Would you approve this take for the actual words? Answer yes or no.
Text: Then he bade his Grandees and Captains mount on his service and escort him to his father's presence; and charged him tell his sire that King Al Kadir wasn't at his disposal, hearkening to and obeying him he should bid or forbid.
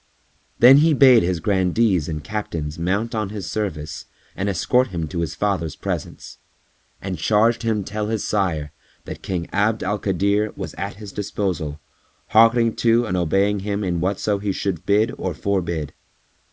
no